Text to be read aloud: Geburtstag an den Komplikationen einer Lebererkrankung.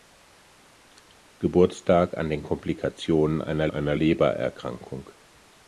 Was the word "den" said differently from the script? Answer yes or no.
no